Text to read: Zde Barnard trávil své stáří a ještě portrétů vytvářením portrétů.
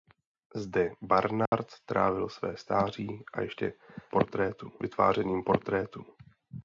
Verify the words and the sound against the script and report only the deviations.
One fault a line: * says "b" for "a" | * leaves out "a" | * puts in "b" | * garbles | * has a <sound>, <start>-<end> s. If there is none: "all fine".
* has a dropout, 1.5-1.5 s